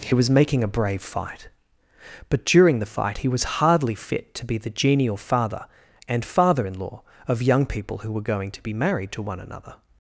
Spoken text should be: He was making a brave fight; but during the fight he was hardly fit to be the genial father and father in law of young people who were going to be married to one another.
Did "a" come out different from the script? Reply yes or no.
no